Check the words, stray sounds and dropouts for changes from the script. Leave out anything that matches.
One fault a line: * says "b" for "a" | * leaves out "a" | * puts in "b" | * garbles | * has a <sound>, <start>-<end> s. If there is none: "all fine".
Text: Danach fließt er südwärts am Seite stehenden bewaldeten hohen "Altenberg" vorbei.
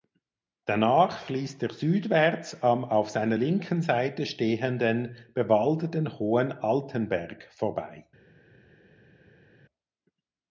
* puts in "auf seiner linken"